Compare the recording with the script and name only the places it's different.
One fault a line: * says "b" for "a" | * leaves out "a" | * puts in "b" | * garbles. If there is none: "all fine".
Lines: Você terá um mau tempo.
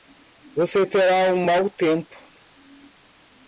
all fine